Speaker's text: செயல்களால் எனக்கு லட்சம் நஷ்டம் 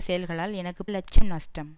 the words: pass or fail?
pass